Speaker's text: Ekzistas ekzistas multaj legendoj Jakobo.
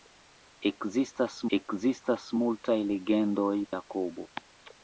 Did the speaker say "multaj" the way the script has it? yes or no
yes